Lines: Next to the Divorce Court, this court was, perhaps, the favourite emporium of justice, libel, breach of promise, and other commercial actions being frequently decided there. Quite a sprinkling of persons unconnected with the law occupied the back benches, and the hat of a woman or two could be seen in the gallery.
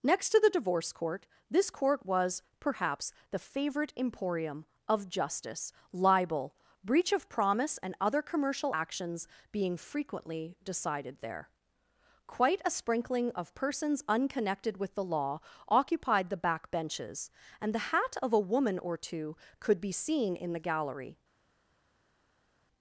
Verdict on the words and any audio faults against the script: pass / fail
pass